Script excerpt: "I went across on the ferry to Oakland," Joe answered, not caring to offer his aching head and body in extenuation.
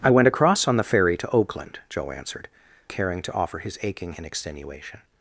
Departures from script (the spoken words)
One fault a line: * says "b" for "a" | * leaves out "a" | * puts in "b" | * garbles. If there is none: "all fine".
* leaves out "not"
* leaves out "head and body"